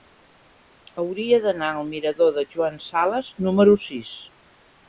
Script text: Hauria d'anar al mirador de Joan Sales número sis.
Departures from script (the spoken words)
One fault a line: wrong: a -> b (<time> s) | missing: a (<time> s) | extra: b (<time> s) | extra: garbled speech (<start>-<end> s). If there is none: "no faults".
no faults